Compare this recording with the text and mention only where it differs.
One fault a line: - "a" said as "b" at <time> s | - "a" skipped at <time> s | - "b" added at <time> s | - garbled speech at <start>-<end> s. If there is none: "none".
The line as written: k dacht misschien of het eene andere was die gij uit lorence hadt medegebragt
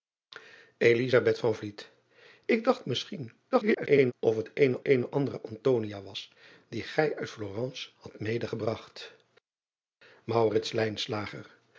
- garbled speech at 3.5-4.1 s
- "eene" added at 4.8 s